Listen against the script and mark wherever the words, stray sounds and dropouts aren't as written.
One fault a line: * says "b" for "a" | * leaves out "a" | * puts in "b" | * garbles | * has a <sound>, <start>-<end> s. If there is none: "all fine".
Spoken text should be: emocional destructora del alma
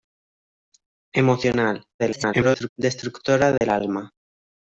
* garbles
* has a dropout, 3.6-3.6 s